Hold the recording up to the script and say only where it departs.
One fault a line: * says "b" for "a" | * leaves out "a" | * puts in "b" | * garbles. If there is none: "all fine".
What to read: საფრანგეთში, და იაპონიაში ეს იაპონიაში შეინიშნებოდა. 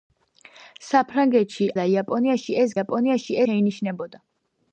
all fine